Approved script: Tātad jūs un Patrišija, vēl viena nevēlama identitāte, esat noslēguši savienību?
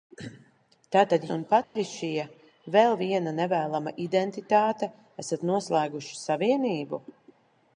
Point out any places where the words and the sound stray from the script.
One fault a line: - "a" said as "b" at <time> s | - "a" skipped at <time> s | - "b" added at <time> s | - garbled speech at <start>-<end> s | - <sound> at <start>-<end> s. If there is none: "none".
- "jūs" skipped at 1.3 s
- dropout at 1.6-1.8 s